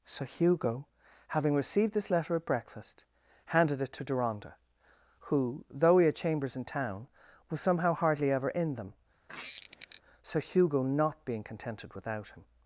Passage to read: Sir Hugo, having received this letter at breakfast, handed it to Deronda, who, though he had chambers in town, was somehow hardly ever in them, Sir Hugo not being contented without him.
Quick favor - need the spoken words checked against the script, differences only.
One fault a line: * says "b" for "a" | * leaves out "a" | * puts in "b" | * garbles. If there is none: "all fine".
all fine